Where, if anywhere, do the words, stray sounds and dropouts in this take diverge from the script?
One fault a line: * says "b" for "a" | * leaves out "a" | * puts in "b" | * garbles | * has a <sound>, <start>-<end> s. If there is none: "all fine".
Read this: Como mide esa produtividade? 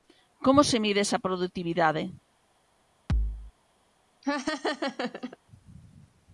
* puts in "se"
* has a thud, 3.1-3.5 s
* has a laugh, 4.2-5.4 s